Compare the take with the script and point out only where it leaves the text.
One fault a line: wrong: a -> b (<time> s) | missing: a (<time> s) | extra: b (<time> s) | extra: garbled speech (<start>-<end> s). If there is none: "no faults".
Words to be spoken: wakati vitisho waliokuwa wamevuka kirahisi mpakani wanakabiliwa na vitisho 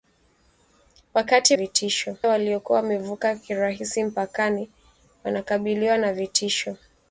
no faults